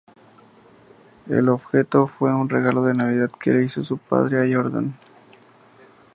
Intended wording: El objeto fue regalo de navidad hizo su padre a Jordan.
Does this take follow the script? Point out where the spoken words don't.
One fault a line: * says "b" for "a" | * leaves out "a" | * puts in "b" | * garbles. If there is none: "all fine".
* puts in "un"
* puts in "que le"